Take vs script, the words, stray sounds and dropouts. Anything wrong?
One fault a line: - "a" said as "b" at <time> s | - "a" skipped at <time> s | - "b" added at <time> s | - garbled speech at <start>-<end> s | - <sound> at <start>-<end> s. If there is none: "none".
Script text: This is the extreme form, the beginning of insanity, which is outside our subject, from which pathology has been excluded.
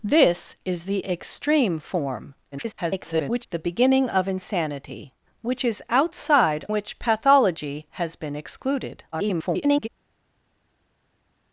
- garbled speech at 2.5-3.5 s
- "our subject from" skipped at 6.7 s
- garbled speech at 9.1-9.9 s